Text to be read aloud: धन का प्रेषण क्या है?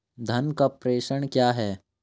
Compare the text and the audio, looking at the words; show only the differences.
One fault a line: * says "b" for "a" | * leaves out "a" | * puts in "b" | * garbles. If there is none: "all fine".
all fine